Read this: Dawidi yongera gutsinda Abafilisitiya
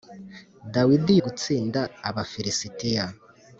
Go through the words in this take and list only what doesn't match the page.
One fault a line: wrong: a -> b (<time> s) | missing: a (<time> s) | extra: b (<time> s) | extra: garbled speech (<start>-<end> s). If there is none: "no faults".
missing: yongera (1.1 s)